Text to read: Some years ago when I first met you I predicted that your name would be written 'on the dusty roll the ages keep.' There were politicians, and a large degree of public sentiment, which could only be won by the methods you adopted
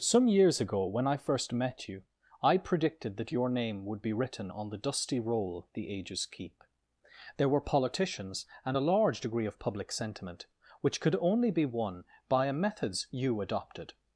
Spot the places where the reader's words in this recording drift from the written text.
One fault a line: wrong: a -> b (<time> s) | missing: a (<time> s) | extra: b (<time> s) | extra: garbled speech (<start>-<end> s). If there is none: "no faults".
wrong: the -> a (12.4 s)